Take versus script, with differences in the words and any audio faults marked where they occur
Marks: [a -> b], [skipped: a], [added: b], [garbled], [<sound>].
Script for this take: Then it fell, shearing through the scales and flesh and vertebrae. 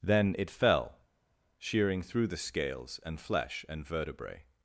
Then it fell, shearing through the scales and flesh and vertebrae.